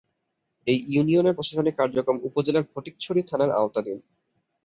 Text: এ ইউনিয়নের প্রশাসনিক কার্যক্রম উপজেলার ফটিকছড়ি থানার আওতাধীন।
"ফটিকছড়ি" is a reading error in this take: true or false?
false